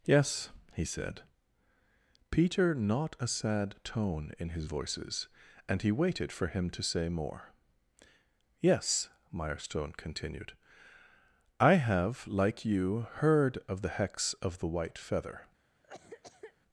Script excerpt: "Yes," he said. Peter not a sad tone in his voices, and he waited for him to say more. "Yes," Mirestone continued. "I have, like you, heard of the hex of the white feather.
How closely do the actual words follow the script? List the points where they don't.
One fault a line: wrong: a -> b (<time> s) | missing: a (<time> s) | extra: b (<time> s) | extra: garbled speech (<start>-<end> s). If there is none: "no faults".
no faults